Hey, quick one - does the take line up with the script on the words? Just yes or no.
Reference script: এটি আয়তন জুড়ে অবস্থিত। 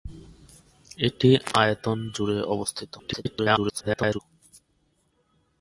no